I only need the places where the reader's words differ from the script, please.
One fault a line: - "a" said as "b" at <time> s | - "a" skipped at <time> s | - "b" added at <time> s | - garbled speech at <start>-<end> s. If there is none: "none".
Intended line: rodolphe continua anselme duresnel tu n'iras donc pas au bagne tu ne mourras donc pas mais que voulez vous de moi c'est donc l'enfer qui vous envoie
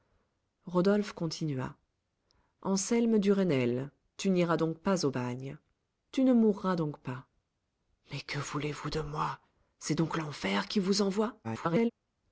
- garbled speech at 11.4-11.9 s